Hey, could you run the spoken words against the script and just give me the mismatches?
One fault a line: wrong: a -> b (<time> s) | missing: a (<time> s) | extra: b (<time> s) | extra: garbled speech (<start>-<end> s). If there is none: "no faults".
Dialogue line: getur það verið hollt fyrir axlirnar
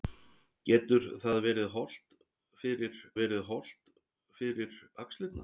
extra: verið hollt fyrir (3.2 s)